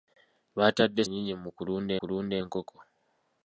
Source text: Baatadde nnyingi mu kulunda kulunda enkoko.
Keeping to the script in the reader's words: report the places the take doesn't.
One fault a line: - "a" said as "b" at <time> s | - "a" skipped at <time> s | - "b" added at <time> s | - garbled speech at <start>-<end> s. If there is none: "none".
none